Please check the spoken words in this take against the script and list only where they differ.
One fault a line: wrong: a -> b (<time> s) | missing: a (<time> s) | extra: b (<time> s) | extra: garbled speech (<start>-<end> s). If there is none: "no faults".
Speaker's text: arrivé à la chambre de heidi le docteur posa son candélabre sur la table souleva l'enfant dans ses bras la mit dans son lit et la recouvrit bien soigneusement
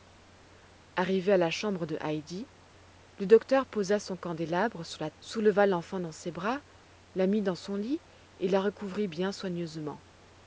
missing: table (5.1 s)